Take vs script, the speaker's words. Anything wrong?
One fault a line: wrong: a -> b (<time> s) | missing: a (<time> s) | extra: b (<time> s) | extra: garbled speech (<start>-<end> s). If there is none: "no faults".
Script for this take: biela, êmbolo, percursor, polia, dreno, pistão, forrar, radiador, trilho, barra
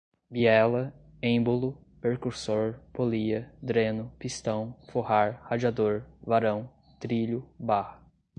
extra: varão (6.2 s)